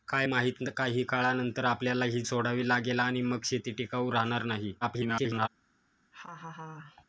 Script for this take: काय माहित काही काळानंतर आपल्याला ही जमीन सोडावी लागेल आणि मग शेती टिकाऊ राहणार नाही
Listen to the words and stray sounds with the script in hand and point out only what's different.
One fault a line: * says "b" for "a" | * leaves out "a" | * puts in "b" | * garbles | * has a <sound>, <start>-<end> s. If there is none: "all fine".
* leaves out "जमीन"
* garbles
* has a laugh, 6.1-7.0 s